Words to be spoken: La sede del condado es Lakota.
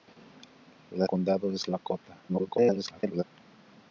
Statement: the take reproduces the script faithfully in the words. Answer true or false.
false